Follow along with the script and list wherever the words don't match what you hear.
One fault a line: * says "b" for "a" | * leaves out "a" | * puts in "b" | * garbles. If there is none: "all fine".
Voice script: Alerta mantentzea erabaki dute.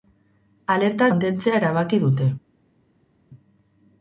all fine